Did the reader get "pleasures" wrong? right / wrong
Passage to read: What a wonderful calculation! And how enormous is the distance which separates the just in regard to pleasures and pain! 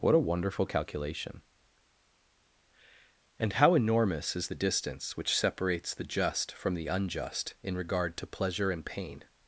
wrong